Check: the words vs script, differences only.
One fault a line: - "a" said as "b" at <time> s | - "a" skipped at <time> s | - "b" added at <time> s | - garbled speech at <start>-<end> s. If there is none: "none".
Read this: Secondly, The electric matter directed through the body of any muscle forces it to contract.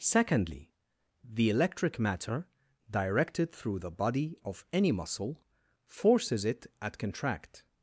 - "to" said as "at" at 6.8 s